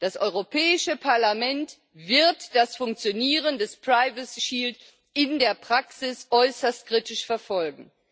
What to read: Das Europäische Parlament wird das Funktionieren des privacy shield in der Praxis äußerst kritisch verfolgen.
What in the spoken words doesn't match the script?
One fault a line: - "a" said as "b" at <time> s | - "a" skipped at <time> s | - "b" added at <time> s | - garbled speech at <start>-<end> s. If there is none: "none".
none